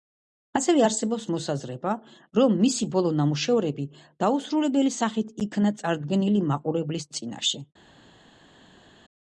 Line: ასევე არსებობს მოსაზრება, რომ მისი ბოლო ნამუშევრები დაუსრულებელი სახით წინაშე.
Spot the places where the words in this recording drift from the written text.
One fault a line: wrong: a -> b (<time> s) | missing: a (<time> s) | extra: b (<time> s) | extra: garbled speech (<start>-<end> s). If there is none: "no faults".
extra: იქნა წარდგენილი მაყურებლის (5.5 s)